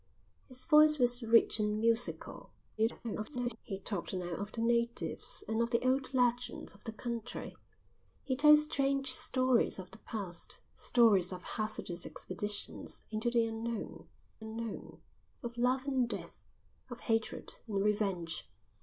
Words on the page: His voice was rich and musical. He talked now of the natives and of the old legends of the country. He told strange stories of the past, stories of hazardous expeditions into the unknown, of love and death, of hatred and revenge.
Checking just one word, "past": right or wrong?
right